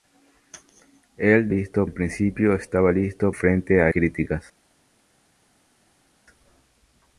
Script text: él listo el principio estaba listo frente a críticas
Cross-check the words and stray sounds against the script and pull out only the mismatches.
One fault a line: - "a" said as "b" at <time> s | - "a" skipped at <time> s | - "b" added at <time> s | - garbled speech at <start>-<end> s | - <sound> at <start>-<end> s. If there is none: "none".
none